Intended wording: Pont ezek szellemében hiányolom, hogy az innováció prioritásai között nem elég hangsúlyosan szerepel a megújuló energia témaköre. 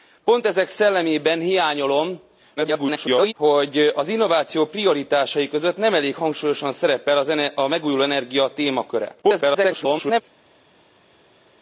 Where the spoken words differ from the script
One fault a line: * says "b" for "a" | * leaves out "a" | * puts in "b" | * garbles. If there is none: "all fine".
* garbles
* garbles